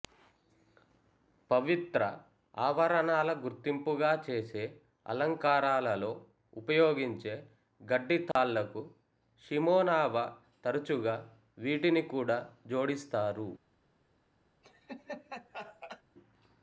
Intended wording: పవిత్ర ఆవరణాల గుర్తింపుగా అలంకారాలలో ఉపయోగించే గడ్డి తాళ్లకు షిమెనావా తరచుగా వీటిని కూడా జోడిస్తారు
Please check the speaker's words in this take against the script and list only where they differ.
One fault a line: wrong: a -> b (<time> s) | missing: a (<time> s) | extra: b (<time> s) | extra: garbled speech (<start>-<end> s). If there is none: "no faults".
extra: చేసే (4.3 s)